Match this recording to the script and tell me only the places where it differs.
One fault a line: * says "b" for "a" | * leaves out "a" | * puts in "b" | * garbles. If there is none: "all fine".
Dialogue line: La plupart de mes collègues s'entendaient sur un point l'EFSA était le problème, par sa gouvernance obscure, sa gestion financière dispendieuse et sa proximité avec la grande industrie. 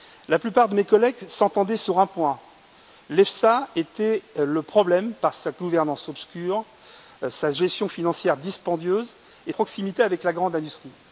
* leaves out "sa"